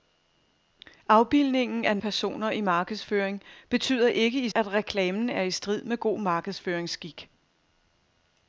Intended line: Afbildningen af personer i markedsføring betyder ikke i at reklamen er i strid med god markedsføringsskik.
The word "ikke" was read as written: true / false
true